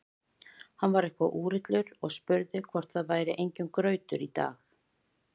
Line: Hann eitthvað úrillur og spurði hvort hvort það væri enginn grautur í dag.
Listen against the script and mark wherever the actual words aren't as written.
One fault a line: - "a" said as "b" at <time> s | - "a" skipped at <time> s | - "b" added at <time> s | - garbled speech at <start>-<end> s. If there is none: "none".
- "var" added at 0.9 s
- "hvort" skipped at 3.0 s